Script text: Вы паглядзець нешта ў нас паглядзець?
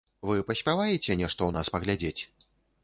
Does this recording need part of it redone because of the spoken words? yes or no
yes